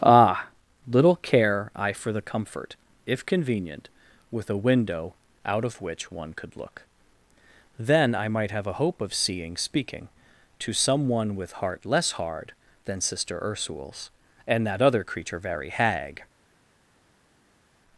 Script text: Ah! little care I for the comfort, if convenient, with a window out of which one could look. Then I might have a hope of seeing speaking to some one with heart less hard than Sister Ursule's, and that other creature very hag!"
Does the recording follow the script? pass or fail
pass